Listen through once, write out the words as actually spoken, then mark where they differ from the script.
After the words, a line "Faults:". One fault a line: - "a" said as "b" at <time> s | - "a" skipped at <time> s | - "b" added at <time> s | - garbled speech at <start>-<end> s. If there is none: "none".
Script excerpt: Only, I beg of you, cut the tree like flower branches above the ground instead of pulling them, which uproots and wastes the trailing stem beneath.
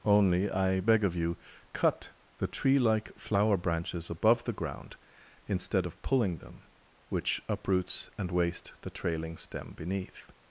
Only, I beg of you, cut the tree like flower branches above the ground instead of pulling them, which uproots and waste the trailing stem beneath.
Faults:
- "wastes" said as "waste" at 8.3 s